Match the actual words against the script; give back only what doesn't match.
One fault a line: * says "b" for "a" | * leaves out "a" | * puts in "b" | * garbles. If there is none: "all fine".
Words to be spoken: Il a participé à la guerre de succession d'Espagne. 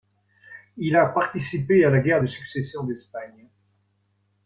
all fine